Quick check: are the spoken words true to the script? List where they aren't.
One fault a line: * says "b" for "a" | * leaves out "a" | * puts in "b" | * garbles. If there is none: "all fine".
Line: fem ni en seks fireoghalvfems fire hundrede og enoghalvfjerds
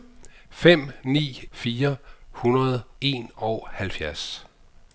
* leaves out "en seks fireoghalvfems"
* leaves out "og"